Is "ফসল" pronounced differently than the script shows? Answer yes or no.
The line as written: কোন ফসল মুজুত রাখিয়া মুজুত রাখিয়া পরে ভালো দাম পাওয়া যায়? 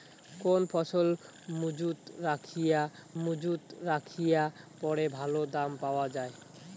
no